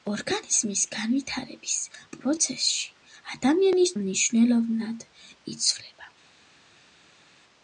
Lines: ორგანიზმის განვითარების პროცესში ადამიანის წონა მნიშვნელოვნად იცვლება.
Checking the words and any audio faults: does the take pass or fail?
fail